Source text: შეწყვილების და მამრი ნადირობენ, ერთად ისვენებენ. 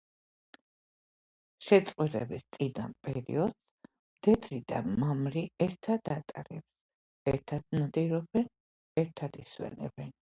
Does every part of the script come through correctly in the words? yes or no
no